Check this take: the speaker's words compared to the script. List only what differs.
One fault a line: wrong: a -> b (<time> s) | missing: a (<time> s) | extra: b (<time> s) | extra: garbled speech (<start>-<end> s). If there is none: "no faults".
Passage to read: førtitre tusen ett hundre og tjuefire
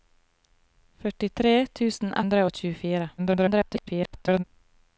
missing: ett (2.2 s)
extra: garbled speech (3.2-4.4 s)